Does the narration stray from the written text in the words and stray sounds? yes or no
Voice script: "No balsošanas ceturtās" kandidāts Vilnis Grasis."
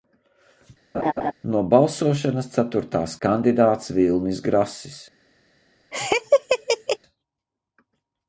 yes